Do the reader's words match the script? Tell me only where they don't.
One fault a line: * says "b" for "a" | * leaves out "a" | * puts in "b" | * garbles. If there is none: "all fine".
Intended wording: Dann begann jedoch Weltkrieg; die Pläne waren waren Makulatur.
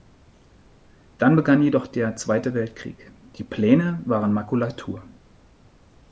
* puts in "der Zweite"
* leaves out "waren"